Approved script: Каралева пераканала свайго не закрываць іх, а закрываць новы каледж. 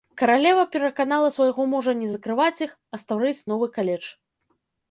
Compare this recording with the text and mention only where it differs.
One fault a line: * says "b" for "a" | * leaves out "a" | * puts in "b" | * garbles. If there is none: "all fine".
* puts in "мужа"
* says "стварыць" for "закрываць"